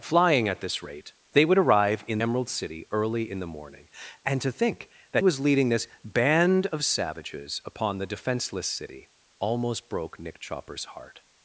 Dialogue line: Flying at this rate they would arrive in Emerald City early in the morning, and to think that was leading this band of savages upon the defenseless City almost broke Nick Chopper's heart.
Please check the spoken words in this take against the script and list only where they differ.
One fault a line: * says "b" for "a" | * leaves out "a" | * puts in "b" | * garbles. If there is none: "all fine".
all fine